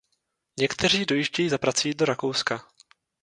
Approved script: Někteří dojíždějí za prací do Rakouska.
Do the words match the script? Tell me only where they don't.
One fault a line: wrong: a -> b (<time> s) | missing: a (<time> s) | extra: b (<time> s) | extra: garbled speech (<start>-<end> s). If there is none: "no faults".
no faults